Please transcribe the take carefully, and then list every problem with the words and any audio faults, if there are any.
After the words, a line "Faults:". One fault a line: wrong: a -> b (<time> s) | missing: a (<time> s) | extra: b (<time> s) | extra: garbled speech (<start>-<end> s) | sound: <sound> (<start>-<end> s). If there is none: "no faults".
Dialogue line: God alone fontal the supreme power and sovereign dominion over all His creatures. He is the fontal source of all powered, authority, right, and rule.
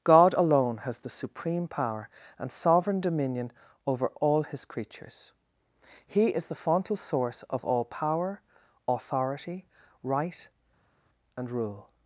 God alone has the supreme power and sovereign dominion over all His creatures. He is the fontal source of all power, authority, right, and rule.
Faults:
wrong: fontal -> has (0.8 s)
wrong: powered -> power (7.8 s)